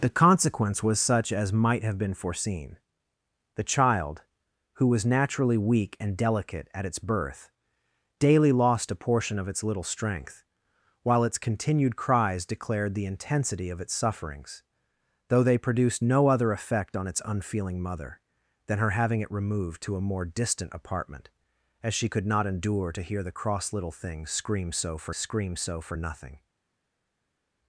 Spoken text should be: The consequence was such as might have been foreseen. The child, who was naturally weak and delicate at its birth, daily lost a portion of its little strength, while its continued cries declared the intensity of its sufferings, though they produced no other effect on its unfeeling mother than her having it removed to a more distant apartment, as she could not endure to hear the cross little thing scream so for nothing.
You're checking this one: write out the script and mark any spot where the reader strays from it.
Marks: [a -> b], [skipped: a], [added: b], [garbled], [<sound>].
The consequence was such as might have been foreseen. The child, who was naturally weak and delicate at its birth, daily lost a portion of its little strength, while its continued cries declared the intensity of its sufferings, though they produced no other effect on its unfeeling mother than her having it removed to a more distant apartment, as she could not endure to hear the cross little thing scream so for [added: scream so for] nothing.